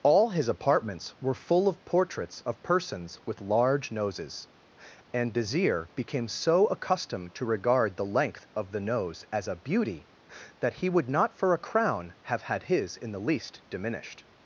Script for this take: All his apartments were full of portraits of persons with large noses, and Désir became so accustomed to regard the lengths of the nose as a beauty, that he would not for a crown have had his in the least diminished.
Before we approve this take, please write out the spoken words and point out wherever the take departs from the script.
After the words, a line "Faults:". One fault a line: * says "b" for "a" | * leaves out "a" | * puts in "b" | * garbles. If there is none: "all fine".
All his apartments were full of portraits of persons with large noses, and Désir became so accustomed to regard the length of the nose as a beauty, that he would not for a crown have had his in the least diminished.
Faults:
* says "length" for "lengths"